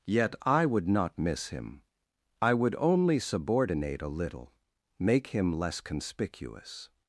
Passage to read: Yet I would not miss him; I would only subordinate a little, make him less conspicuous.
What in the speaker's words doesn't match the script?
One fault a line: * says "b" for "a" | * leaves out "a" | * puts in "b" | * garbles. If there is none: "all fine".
all fine